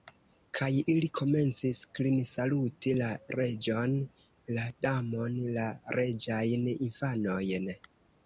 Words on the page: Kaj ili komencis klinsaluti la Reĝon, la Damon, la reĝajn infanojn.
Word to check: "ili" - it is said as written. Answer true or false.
true